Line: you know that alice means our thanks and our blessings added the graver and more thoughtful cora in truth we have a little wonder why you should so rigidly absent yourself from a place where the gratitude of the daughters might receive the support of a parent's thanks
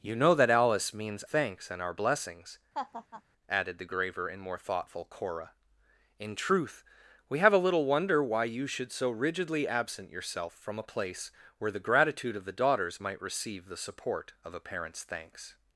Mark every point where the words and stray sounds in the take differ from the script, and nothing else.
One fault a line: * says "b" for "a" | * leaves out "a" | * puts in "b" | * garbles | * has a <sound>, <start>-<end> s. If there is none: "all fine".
* leaves out "our"
* has a laugh, 2.7-3.2 s